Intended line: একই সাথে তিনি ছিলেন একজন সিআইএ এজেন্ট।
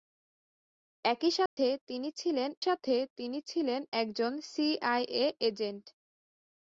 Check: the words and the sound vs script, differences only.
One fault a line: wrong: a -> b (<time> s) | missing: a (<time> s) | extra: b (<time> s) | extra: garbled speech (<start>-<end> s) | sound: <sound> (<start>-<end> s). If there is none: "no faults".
sound: dropout (1.5-1.6 s)
extra: সাথে তিনি ছিলেন (2.6 s)